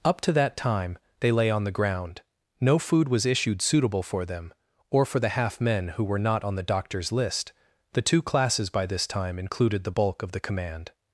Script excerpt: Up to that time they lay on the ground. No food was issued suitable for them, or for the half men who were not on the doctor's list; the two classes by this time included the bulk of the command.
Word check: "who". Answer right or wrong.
right